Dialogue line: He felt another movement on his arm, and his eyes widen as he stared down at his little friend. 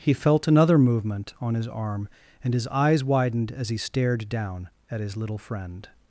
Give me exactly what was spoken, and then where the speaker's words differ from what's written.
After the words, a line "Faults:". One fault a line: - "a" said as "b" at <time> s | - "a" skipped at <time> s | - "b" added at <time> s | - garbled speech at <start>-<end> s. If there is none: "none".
He felt another movement on his arm, and his eyes widened as he stared down at his little friend.
Faults:
- "widen" said as "widened" at 3.0 s